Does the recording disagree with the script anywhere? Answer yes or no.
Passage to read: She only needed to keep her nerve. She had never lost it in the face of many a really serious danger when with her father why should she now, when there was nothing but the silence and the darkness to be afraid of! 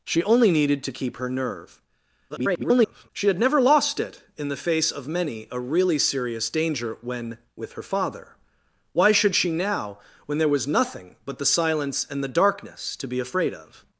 yes